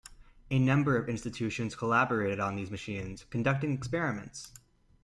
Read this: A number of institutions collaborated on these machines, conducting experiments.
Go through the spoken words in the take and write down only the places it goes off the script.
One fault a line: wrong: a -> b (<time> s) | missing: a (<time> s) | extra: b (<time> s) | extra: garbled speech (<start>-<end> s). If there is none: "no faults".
no faults